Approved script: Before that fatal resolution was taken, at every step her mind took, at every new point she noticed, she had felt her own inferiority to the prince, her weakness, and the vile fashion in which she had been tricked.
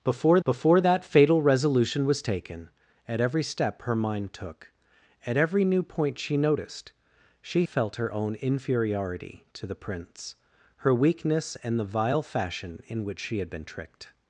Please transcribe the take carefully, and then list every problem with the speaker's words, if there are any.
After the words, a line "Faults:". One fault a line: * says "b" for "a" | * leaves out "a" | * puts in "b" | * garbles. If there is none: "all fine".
Before before that fatal resolution was taken, at every step her mind took, at every new point she noticed, she felt her own inferiority to the prince, her weakness, and the vile fashion in which she had been tricked.
Faults:
* puts in "before"
* leaves out "had"